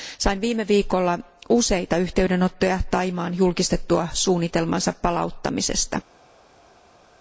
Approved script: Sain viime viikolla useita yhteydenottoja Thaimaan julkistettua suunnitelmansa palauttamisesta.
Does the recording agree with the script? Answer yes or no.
yes